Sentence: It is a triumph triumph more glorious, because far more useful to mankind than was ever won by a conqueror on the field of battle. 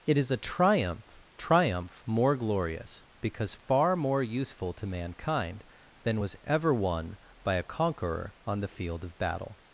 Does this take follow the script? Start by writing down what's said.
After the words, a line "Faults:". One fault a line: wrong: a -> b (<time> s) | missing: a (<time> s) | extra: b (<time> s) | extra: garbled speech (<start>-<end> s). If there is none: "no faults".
It is a triumph triumph more glorious, because far more useful to mankind than was ever won by a conqueror on the field of battle.
Faults:
no faults